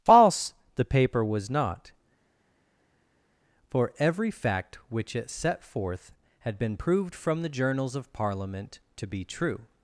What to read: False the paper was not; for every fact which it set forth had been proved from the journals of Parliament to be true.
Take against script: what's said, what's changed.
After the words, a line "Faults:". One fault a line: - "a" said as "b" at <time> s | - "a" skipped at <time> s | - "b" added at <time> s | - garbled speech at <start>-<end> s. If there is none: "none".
False the paper was not; for every fact which it set forth had been proved from the journals of Parliament to be true.
Faults:
none